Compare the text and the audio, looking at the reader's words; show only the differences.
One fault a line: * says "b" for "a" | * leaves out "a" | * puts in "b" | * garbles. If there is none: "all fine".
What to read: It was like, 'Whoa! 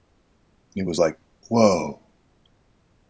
all fine